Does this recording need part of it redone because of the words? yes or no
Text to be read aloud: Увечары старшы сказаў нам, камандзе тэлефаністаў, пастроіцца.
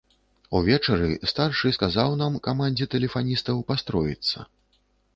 no